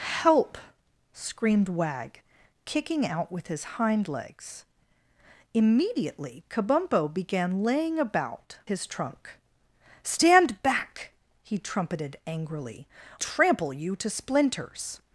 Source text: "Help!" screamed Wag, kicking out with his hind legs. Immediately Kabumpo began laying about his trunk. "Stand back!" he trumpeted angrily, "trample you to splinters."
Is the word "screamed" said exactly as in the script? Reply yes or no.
yes